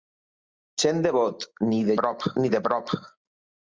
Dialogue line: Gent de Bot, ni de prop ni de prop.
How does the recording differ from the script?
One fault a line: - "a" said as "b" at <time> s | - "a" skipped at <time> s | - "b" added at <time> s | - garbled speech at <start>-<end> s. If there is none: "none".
none